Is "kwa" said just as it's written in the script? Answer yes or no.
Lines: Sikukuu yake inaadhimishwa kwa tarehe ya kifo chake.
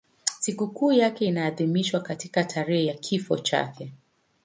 no